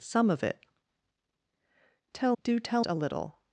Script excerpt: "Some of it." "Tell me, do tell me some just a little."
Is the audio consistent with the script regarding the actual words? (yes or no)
no